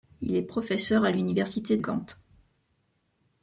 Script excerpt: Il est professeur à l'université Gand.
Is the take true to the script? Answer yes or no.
yes